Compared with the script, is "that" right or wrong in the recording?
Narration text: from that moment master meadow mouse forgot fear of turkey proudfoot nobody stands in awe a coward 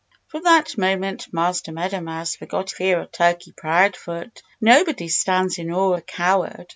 right